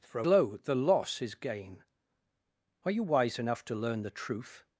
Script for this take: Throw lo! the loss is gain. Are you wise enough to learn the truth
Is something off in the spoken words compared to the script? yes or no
no